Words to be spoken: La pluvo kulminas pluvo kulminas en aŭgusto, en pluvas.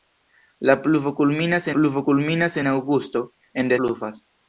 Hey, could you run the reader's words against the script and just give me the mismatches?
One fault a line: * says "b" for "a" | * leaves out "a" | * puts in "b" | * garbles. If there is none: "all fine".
all fine